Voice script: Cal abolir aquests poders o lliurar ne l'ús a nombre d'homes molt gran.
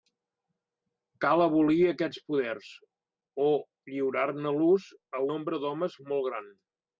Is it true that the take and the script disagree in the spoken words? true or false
false